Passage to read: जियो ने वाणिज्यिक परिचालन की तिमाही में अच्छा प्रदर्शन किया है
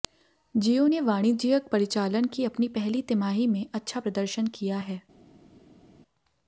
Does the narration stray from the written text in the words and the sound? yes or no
yes